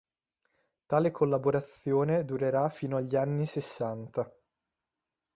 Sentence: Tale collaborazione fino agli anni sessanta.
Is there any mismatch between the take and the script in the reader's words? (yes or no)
yes